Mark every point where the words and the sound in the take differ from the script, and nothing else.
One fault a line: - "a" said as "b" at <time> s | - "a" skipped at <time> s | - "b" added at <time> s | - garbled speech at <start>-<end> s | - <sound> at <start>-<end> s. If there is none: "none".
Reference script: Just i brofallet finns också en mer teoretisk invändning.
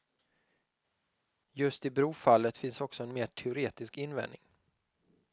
none